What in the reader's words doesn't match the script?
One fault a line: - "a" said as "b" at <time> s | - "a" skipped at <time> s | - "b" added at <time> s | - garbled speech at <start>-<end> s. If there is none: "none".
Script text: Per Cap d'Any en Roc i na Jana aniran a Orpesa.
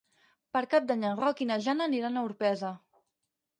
none